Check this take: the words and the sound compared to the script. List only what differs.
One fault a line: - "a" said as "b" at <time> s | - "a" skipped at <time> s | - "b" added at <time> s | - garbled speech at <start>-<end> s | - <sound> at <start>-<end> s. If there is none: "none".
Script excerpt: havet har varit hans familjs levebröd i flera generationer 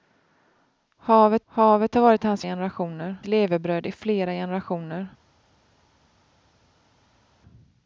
- "havet" added at 1.5 s
- "familjs" said as "generationer" at 2.4 s